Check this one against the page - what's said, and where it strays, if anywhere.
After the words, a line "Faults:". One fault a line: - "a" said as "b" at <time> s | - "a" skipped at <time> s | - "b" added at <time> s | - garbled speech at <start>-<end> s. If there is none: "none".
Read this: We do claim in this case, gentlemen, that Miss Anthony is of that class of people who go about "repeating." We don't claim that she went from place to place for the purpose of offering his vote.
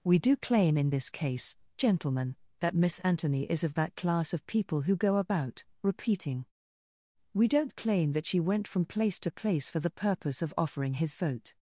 We do claim in this case, gentlemen, that Miss Anthony is of that class of people who go about "repeating." We don't claim that she went from place to place for the purpose of offering his vote.
Faults:
none